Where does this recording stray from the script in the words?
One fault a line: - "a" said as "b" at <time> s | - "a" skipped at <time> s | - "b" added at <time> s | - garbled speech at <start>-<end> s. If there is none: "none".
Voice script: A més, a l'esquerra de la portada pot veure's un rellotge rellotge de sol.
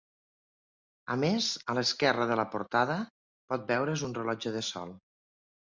- "rellotge" skipped at 4.6 s